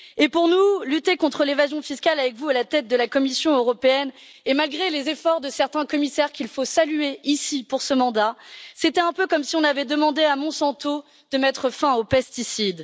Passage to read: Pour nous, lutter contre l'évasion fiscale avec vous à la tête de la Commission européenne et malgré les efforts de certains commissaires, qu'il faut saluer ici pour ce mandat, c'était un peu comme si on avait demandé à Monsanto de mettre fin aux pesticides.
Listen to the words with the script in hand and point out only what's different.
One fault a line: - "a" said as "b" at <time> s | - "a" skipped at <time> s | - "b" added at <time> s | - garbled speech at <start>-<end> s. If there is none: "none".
none